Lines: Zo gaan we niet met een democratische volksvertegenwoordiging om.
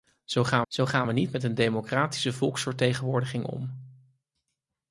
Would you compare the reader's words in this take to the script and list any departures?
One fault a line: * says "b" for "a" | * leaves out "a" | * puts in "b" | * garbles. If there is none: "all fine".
* puts in "zo gaan"